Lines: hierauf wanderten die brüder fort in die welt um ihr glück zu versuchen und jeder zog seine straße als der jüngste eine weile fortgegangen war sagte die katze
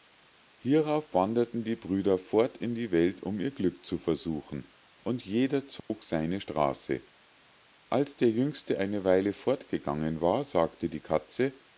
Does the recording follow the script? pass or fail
pass